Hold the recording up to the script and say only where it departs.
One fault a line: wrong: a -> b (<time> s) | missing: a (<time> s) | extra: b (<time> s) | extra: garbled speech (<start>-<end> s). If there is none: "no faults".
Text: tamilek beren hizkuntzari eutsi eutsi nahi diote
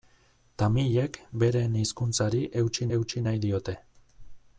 no faults